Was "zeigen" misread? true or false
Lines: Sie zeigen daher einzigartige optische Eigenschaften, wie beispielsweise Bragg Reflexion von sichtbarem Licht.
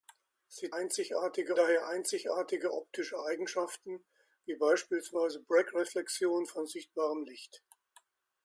true